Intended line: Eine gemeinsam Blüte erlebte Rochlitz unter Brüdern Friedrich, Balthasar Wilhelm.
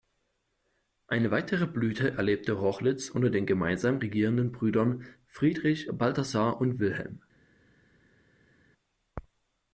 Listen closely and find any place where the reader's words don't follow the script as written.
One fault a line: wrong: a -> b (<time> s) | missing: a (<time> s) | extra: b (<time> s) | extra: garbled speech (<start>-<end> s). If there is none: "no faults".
wrong: gemeinsam -> weitere (1.3 s)
extra: den gemeinsam regierenden (3.3 s)
extra: und (6.6 s)